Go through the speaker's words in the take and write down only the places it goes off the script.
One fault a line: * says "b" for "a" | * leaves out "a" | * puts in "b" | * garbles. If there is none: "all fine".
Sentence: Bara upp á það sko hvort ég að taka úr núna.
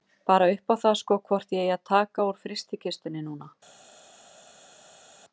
* puts in "eigi"
* puts in "frystikistunni"